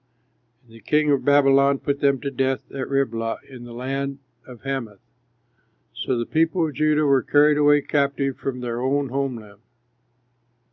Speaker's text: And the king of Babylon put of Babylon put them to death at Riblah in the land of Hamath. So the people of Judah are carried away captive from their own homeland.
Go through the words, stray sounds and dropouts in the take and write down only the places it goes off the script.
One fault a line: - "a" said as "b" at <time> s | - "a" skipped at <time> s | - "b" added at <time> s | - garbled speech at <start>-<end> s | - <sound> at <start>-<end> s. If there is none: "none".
- "of Babylon put" skipped at 2.0 s
- "are" said as "were" at 7.0 s